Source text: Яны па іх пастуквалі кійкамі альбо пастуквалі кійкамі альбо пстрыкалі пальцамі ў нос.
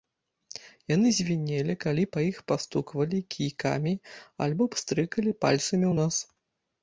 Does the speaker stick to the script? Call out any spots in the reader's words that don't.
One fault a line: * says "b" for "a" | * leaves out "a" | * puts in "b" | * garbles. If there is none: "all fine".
* puts in "звінелі калі"
* leaves out "пастуквалі кійкамі альбо"